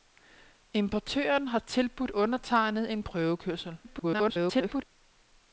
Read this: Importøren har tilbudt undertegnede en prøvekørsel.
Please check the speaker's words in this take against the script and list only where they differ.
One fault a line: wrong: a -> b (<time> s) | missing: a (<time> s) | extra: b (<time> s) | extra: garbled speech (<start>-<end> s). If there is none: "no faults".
extra: garbled speech (3.8-4.8 s)